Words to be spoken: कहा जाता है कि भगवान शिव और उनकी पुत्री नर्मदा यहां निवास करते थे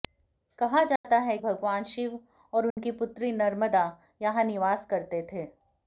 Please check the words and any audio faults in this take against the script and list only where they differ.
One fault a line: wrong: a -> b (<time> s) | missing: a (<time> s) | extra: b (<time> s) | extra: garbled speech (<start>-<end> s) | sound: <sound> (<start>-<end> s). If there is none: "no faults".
sound: dropout (1.0-1.0 s)
missing: कि (1.4 s)
sound: dropout (2.7-2.8 s)